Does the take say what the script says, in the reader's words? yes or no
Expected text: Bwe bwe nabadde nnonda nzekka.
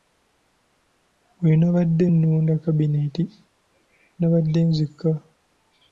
no